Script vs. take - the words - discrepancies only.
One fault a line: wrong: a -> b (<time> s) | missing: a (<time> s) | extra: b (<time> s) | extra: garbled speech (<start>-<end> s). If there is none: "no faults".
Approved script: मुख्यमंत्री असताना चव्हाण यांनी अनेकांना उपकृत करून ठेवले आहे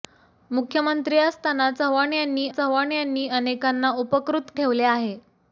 extra: चव्हाण यांनी (2.5 s)
missing: करून (4.5 s)